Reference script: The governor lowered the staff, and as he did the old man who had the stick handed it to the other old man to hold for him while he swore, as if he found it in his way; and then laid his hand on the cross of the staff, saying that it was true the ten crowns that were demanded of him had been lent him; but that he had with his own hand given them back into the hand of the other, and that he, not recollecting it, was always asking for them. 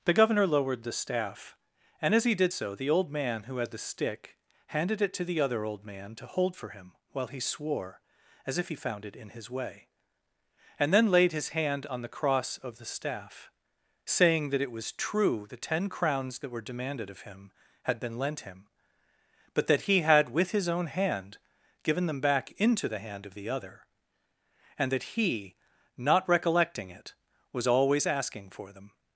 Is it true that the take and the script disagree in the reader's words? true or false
true